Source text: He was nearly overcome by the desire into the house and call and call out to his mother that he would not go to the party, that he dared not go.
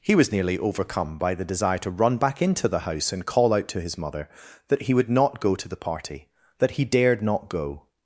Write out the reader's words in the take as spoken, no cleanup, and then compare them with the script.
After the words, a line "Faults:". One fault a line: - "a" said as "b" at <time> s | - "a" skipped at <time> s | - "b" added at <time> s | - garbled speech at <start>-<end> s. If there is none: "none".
He was nearly overcome by the desire to run back into the house and call out to his mother that he would not go to the party, that he dared not go.
Faults:
- "to run back" added at 1.8 s
- "and call" skipped at 3.5 s